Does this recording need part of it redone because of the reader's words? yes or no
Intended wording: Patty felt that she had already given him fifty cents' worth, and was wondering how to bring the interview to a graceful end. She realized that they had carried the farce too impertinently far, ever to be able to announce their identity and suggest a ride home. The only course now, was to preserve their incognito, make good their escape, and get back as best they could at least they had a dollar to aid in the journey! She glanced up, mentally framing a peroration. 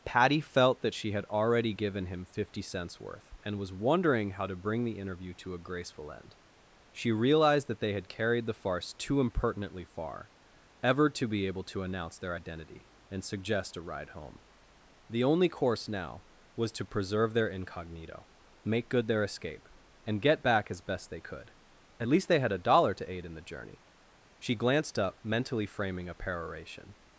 no